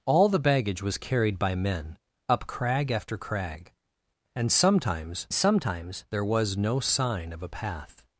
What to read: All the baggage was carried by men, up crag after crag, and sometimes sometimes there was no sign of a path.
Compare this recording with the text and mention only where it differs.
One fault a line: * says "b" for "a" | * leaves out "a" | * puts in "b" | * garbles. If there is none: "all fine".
all fine